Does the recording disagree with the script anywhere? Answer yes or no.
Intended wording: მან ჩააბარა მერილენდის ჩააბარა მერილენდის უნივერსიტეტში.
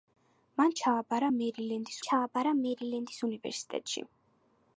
no